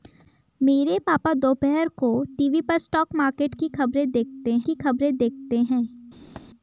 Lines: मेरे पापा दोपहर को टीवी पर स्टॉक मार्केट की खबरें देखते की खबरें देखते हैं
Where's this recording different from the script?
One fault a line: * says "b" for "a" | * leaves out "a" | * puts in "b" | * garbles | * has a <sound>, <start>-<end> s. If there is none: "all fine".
* has a thud, 6.4-6.5 s